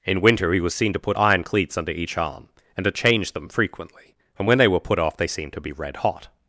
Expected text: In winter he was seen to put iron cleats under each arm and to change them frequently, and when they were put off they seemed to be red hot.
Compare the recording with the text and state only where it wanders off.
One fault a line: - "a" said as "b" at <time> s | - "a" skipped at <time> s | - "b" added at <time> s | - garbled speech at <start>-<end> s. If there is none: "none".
none